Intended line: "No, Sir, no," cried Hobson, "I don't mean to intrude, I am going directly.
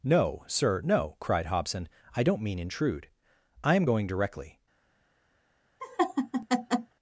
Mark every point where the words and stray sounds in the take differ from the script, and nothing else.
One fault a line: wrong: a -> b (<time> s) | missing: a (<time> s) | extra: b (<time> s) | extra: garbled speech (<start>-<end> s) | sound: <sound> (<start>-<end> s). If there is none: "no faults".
missing: to (2.6 s)
sound: laugh (5.8-6.9 s)